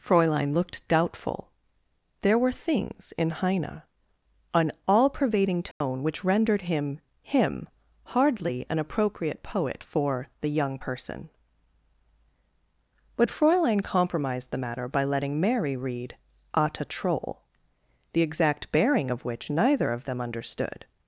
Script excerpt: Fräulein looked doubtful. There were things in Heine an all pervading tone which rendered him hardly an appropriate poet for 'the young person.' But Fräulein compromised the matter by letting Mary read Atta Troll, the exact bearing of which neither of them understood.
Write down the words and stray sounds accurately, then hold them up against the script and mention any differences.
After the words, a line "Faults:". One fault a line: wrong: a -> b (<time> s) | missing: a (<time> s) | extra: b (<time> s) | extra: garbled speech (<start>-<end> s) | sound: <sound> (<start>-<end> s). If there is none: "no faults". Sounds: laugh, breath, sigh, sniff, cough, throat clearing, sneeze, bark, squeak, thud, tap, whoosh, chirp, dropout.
Fräulein looked doubtful. There were things in Heine an all pervading tone which rendered him him hardly an appropriate poet for 'the young person.' But Fräulein compromised the matter by letting Mary read Atta Troll, the exact bearing of which neither of them understood.
Faults:
sound: dropout (5.7-5.8 s)
extra: him (7.2 s)